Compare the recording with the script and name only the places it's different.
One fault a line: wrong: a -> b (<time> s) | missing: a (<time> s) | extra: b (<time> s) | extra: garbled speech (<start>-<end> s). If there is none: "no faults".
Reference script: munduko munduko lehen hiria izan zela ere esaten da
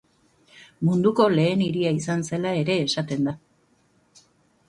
missing: munduko (1.2 s)